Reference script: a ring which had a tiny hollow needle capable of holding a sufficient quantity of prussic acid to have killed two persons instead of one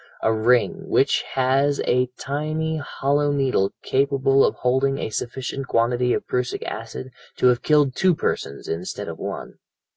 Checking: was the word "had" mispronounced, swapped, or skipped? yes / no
yes